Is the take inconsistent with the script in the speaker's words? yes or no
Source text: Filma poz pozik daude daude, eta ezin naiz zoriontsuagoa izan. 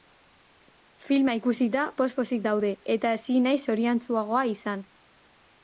yes